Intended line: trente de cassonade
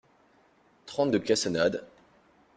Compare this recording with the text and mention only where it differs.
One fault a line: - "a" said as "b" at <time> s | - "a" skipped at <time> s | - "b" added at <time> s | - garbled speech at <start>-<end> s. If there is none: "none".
none